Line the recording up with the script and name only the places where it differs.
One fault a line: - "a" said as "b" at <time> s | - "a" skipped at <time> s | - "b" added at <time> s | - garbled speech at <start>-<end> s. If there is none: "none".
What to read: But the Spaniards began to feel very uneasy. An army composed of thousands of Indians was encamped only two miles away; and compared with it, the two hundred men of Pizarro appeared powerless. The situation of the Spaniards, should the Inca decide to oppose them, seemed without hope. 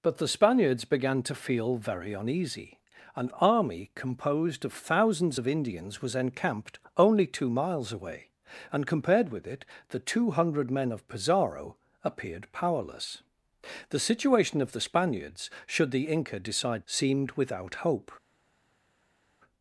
- "to oppose them" skipped at 16.8 s